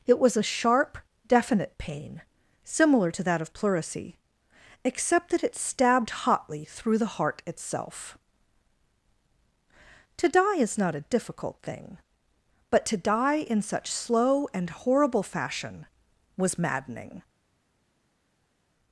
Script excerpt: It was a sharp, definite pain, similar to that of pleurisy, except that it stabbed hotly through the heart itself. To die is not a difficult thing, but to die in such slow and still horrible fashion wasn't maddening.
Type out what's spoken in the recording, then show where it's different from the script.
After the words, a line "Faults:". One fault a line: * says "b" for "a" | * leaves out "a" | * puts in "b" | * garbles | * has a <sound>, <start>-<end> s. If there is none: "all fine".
It was a sharp, definite pain, similar to that of pleurisy, except that it stabbed hotly through the heart itself. To die is not a difficult thing, but to die in such slow and horrible fashion was maddening.
Faults:
* leaves out "still"
* says "was" for "wasn't"